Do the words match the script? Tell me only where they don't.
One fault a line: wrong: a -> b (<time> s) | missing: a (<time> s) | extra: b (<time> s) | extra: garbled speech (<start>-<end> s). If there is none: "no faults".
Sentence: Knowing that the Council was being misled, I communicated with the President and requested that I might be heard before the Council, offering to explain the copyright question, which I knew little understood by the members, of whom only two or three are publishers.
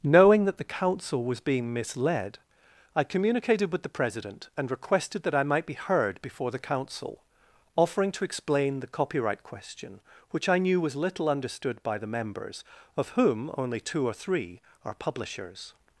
extra: was (10.8 s)